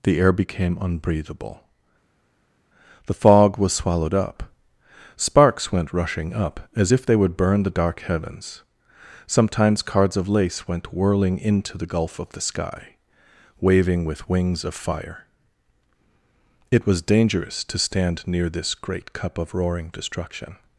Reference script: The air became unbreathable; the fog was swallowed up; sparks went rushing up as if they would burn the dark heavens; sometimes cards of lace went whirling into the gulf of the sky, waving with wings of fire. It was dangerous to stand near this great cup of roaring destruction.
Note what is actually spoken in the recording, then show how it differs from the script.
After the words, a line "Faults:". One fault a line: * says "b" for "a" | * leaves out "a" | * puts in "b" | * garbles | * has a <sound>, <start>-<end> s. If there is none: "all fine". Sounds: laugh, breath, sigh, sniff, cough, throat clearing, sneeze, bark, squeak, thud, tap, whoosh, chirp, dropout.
The air became unbreathable; the fog was swallowed up; sparks went rushing up as if they would burn the dark heavens; sometimes cards of lace went whirling into the gulf of the sky, waving with wings of fire. It was dangerous to stand near this great cup of roaring destruction.
Faults:
all fine